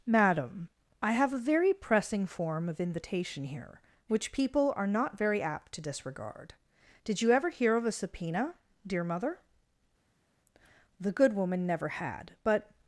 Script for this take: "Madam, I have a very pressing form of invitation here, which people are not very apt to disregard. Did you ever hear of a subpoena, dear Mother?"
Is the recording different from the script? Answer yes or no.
yes